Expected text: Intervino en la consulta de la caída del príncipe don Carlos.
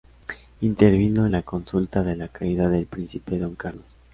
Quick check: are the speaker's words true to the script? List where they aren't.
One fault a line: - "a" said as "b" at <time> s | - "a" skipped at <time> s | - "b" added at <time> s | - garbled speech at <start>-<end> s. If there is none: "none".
none